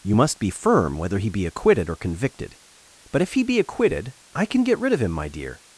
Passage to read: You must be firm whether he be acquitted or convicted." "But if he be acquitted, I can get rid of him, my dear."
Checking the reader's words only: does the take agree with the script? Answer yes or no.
yes